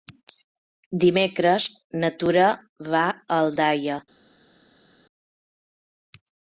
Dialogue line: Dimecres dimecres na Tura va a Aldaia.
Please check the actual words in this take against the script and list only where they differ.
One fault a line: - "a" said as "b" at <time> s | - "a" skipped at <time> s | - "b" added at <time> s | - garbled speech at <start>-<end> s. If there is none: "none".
- "dimecres" skipped at 1.7 s